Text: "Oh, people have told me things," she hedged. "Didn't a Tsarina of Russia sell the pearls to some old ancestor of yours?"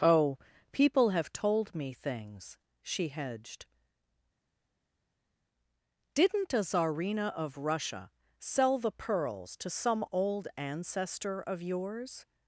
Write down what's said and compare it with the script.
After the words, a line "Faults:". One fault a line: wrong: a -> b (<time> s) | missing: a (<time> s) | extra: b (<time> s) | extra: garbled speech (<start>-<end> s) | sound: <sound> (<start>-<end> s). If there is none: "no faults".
"Oh, people have told me things," she hedged. "Didn't a Tsarina of Russia sell the pearls to some old ancestor of yours?"
Faults:
no faults